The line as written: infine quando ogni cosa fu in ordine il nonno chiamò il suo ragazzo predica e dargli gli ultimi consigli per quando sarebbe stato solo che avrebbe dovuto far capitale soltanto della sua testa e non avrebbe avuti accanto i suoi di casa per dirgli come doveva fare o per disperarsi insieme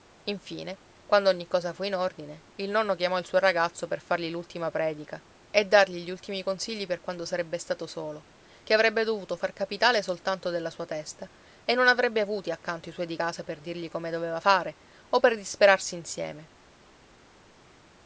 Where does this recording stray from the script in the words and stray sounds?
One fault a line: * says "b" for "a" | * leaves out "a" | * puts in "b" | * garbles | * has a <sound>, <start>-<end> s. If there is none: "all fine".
* puts in "per fargli l'ultima"